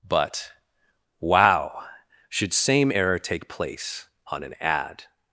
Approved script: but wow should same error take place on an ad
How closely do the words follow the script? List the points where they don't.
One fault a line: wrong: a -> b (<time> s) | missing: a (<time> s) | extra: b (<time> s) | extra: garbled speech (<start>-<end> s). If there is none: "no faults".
no faults